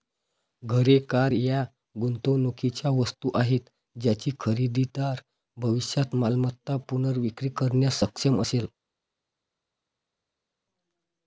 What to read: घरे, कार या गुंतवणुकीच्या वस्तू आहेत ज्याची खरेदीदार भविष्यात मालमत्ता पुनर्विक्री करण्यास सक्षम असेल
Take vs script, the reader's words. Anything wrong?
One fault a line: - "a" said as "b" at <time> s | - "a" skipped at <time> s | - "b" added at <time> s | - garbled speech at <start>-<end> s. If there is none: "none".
none